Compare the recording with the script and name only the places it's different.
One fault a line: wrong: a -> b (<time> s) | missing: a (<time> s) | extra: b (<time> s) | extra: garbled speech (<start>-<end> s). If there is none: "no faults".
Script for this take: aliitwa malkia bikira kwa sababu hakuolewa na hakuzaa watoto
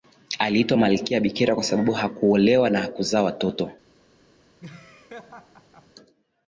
no faults